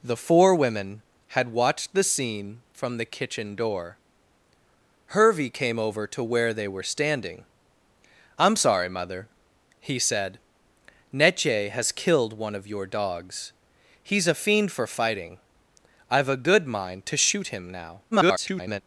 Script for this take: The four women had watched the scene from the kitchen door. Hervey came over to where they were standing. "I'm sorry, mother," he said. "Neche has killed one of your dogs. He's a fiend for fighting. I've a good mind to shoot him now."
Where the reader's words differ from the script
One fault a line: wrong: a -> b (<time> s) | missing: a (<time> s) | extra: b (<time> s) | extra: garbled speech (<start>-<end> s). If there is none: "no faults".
extra: garbled speech (18.1-18.8 s)